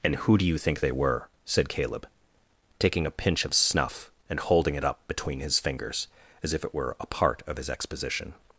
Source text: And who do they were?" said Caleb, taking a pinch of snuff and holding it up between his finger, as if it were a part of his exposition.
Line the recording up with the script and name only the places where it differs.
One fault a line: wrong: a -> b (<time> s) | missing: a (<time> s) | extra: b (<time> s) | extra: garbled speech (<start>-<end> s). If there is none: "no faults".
extra: you think (0.5 s)
wrong: finger -> fingers (5.6 s)